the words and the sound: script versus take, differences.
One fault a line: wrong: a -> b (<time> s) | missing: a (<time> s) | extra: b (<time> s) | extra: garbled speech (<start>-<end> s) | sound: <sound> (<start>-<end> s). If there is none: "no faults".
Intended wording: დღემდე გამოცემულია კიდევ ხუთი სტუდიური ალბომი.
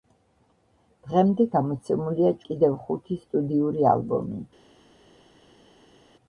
no faults